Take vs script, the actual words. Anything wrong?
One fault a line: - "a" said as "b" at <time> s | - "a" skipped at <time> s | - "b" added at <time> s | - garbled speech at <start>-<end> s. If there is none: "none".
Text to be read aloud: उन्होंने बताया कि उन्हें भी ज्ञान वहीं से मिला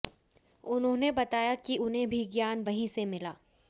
none